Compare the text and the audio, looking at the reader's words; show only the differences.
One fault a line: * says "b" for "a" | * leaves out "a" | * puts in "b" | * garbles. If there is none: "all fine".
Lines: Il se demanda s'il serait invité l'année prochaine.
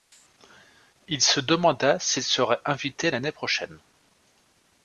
all fine